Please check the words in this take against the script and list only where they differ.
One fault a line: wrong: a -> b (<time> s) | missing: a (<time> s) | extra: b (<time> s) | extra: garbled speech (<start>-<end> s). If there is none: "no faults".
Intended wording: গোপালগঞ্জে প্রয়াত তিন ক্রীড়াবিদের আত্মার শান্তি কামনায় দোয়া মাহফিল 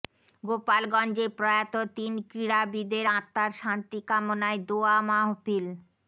no faults